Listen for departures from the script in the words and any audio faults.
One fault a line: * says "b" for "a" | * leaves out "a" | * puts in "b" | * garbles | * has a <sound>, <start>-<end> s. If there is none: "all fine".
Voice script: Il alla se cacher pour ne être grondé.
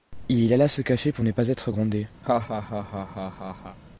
* puts in "pas"
* has a laugh, 2.2-3.8 s